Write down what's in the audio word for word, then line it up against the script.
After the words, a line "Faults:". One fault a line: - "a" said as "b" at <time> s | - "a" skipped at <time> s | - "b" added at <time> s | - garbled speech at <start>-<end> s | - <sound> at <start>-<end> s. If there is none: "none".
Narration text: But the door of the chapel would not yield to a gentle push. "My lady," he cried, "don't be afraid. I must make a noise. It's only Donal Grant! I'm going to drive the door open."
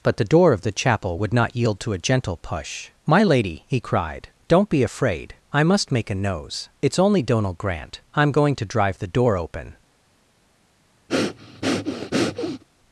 But the door of the chapel would not yield to a gentle push. "My lady," he cried, "don't be afraid. I must make a nose. It's only Donal Grant! I'm going to drive the door open."
Faults:
- "noise" said as "nose" at 6.1 s
- breath at 11.1-12.6 s